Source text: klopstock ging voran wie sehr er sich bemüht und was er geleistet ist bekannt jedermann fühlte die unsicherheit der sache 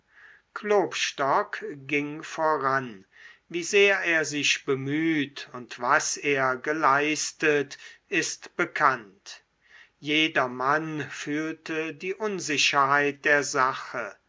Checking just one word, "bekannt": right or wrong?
right